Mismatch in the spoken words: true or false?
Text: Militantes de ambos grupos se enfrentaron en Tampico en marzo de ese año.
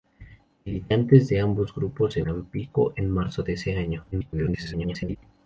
true